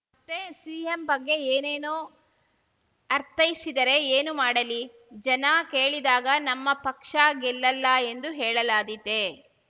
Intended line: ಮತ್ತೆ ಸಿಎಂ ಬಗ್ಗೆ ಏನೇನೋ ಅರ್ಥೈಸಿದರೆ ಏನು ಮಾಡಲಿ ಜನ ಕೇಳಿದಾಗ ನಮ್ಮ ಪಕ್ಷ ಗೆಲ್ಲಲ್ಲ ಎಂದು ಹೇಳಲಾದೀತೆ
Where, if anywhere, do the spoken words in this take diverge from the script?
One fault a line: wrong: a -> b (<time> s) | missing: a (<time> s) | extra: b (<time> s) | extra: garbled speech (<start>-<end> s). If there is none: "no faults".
no faults